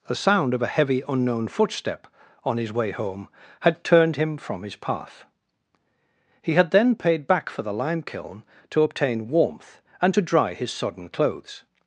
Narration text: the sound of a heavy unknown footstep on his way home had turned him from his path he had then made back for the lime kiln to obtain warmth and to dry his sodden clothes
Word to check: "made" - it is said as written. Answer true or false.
false